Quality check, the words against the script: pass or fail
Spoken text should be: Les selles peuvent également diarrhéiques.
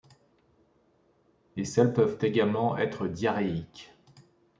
fail